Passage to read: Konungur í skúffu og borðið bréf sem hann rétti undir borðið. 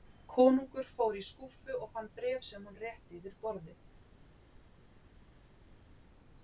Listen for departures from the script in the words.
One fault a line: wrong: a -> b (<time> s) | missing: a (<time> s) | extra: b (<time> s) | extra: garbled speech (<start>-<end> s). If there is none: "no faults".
extra: fór (0.9 s)
wrong: borðið -> fann (2.0 s)
wrong: undir -> yfir (3.2 s)